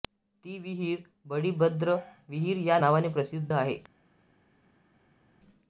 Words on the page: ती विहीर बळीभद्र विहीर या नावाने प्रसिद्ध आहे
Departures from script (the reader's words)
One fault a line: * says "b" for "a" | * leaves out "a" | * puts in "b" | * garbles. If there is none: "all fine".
all fine